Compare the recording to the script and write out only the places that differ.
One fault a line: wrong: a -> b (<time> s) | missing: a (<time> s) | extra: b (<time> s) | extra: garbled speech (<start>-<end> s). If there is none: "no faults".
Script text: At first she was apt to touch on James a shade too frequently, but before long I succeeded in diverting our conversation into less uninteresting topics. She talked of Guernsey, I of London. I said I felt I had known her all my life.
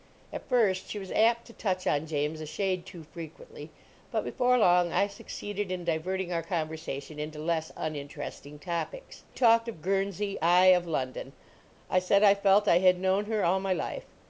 missing: She (9.2 s)